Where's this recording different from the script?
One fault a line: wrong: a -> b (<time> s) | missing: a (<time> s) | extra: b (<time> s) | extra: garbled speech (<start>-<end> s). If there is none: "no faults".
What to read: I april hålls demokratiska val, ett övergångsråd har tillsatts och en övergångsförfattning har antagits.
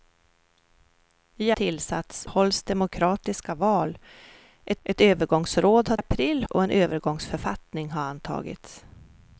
wrong: april -> tillsatts (1.5 s)
extra: ett (4.8 s)
wrong: tillsatts -> april (5.9 s)